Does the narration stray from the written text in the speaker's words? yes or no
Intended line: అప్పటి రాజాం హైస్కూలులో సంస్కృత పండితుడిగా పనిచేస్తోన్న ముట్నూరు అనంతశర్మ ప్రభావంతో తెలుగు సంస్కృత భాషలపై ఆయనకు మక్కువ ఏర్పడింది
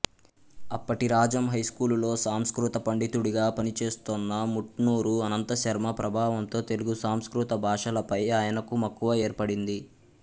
no